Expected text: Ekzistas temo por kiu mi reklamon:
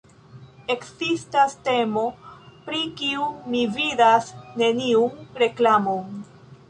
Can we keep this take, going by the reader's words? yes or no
no